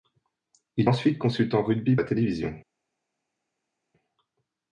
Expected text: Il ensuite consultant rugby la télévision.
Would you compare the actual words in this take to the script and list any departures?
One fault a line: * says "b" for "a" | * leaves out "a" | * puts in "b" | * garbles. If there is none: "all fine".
all fine